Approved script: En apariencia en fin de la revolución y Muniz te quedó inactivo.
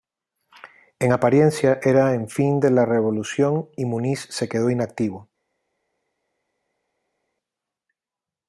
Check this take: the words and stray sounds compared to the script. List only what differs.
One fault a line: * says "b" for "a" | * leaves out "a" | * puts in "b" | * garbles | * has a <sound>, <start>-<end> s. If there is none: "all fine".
* puts in "era"
* says "se" for "te"